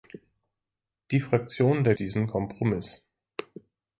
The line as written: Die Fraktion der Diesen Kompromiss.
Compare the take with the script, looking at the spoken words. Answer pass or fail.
pass